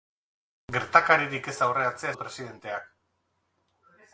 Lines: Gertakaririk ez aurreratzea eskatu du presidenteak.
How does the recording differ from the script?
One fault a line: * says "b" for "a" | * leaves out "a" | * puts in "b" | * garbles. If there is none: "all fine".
* leaves out "eskatu"